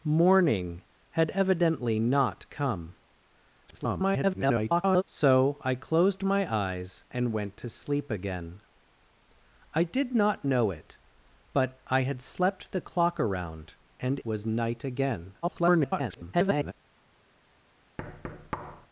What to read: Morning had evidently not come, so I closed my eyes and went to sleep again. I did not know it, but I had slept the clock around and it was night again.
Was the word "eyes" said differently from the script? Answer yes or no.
no